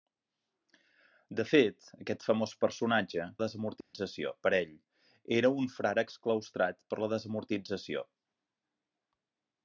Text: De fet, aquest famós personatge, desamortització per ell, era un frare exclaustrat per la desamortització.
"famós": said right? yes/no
yes